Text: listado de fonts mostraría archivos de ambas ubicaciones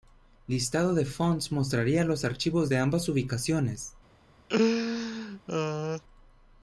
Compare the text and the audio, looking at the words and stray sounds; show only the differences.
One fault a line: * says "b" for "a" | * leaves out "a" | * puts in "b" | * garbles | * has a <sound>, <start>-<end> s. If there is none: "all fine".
* puts in "los"
* has a laugh, 4.5-6.0 s